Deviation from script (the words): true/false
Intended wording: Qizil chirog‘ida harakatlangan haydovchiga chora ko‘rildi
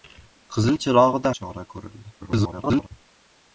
true